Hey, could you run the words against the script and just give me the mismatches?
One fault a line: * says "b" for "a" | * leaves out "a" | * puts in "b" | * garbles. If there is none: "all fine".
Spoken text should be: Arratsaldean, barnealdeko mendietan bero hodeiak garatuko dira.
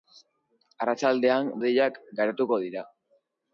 * leaves out "barnealdeko mendietan bero"